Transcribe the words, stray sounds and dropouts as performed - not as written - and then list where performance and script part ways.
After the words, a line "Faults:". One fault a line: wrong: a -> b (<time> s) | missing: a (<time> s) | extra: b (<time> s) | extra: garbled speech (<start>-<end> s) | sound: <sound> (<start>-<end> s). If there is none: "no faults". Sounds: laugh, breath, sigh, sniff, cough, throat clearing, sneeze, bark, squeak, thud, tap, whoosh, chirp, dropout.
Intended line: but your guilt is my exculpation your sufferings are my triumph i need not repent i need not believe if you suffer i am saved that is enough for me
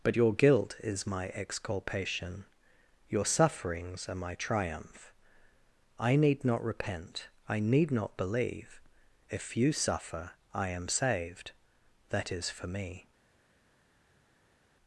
but your guilt is my exculpation your sufferings are my triumph i need not repent i need not believe if you suffer i am saved that is for me
Faults:
missing: enough (12.5 s)